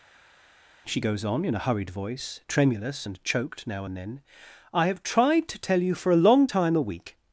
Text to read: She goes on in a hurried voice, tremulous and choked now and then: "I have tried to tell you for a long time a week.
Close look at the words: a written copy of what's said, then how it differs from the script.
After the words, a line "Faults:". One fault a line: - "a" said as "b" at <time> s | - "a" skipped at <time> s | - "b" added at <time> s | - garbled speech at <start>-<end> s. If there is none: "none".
She goes on in a hurried voice, tremulous and choked now and then: "I have tried to tell you for a long time a week.
Faults:
none